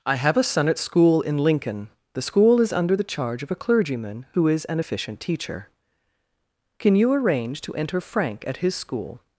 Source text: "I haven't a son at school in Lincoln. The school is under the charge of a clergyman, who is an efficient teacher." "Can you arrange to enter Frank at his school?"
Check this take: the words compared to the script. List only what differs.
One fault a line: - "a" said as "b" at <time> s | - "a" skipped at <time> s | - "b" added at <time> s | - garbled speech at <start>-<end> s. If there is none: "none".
- "haven't" said as "have" at 0.1 s